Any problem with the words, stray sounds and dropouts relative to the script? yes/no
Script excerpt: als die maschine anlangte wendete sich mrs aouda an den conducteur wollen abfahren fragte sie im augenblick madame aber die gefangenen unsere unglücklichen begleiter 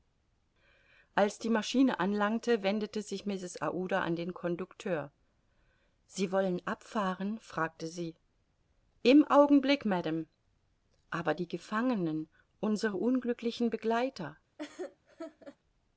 yes